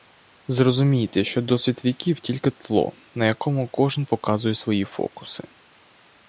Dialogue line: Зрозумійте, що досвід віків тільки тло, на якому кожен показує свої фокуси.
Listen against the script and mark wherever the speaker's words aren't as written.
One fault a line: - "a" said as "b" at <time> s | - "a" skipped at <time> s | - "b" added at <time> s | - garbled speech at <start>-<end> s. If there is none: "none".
none